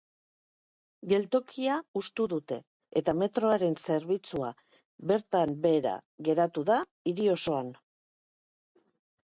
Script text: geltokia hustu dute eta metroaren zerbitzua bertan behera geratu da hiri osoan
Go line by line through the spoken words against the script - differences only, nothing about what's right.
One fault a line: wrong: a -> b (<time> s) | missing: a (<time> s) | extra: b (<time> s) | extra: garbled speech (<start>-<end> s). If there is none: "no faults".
no faults